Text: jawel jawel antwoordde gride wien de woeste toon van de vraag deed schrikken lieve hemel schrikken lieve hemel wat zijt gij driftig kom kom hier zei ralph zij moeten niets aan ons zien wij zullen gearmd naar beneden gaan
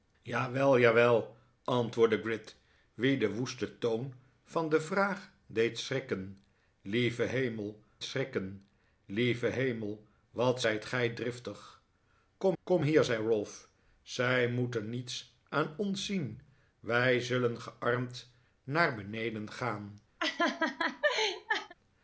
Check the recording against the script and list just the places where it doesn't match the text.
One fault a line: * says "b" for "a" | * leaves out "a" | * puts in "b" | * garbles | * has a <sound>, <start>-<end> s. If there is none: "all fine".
* has a laugh, 20.2-21.7 s